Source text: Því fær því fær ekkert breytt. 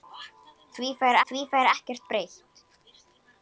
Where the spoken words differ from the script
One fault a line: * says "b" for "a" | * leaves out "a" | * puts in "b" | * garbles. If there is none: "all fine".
all fine